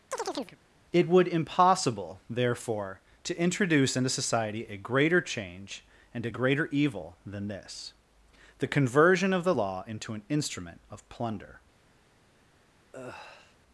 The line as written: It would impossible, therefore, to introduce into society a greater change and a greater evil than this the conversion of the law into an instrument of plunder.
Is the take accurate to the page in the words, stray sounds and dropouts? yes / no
no